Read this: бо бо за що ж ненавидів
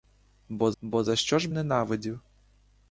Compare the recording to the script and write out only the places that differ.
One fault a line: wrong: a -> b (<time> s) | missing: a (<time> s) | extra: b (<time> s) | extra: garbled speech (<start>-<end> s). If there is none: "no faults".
no faults